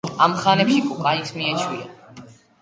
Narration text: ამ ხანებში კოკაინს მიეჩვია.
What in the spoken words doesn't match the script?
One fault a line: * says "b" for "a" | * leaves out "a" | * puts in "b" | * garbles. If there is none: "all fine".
all fine